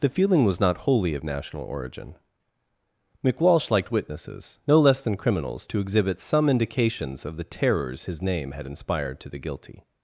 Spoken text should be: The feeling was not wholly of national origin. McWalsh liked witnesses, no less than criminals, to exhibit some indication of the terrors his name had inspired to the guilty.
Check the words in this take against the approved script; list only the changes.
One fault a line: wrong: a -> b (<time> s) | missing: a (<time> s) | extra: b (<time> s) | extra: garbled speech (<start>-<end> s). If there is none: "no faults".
wrong: indication -> indications (6.5 s)